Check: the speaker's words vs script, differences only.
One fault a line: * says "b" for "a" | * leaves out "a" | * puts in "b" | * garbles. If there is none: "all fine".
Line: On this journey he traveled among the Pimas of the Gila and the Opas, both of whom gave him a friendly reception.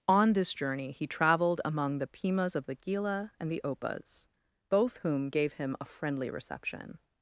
* leaves out "of"